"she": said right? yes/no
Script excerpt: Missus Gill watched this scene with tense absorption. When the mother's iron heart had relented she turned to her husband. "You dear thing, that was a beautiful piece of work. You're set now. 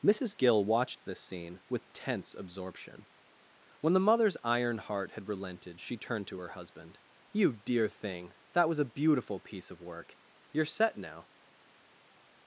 yes